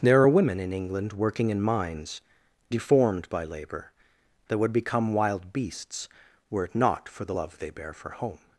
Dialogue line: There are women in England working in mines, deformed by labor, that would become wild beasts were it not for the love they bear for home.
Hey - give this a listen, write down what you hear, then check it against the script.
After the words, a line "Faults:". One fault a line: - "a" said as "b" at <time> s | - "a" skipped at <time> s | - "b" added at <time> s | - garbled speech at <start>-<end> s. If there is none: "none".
There are women in England working in mines, deformed by labor, that would become wild beasts were it not for the love they bear for home.
Faults:
none